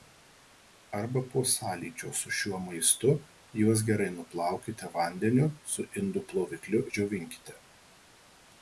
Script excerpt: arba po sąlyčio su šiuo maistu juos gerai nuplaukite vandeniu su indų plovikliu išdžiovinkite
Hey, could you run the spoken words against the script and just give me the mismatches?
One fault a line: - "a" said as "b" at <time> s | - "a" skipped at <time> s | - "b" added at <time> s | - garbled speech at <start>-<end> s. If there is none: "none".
none